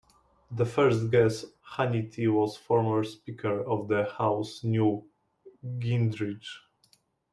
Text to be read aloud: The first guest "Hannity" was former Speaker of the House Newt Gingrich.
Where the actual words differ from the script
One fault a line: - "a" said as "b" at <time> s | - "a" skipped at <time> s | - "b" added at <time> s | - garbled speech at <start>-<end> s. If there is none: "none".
none